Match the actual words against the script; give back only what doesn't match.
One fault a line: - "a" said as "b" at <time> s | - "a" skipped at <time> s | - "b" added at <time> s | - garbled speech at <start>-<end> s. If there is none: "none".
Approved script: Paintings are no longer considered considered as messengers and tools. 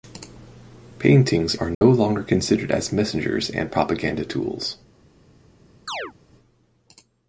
- "considered" skipped at 2.7 s
- "propaganda" added at 3.7 s